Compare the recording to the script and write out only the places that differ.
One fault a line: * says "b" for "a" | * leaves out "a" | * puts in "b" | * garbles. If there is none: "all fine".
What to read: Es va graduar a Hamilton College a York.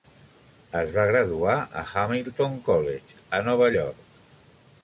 * puts in "Nova"